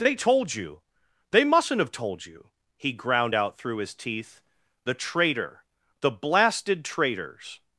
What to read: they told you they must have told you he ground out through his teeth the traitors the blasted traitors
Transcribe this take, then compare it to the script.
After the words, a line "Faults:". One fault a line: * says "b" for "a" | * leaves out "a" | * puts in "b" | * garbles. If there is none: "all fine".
they told you they mustn't have told you he ground out through his teeth the traitor the blasted traitors
Faults:
* says "mustn't" for "must"
* says "traitor" for "traitors"